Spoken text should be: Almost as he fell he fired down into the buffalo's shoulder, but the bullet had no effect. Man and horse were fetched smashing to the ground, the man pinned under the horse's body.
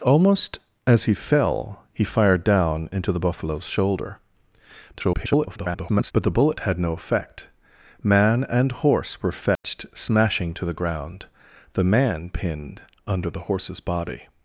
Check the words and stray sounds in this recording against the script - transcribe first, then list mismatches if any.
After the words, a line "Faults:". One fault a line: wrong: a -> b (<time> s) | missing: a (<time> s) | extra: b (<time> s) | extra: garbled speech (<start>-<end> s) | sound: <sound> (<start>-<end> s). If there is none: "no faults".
Almost as he fell he fired down into the buffalo's shoulder, [garbled] but the bullet had no effect. Man and horse were fetched smashing to the ground, the man pinned under the horse's body.
Faults:
extra: garbled speech (4.9-6.1 s)
sound: dropout (9.6-9.6 s)